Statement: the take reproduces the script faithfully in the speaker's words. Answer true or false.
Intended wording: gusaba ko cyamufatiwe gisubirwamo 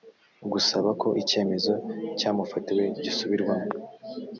false